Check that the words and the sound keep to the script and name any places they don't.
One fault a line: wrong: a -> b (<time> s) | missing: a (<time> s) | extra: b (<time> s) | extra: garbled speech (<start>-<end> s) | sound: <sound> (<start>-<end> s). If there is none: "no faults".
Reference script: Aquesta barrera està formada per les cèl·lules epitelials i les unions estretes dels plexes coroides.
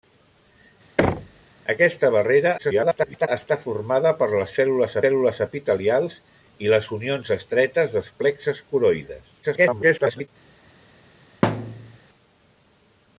sound: thud (1.0-1.4 s)
extra: garbled speech (2.6-3.3 s)
extra: cèl·lules (5.0 s)
extra: garbled speech (9.4-10.3 s)
sound: thud (11.4-12.0 s)